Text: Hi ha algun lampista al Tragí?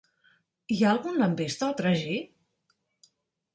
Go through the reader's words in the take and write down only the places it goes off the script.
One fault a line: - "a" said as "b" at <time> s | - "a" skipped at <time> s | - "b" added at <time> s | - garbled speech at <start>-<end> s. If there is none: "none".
none